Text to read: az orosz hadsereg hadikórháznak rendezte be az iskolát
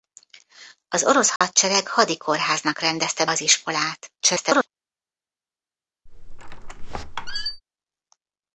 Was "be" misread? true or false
true